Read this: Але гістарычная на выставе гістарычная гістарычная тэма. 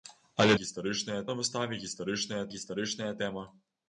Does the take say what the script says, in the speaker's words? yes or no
yes